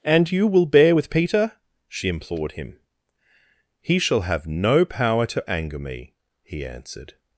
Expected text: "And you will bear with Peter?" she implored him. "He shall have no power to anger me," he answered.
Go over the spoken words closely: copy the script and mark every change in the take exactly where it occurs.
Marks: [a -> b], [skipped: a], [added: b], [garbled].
"And you will bear with Peter?" she implored him. "He shall have no power to anger me," he answered.